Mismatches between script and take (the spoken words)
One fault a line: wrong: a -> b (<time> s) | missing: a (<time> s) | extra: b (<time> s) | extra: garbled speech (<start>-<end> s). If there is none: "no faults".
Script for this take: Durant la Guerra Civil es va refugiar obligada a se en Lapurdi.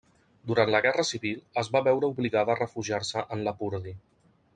wrong: refugiar -> veure (1.9 s)
extra: refugiar (2.6 s)